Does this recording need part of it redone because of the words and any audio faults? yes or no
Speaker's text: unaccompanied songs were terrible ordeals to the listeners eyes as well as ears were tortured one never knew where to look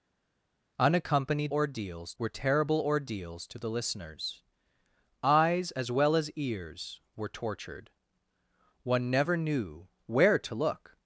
yes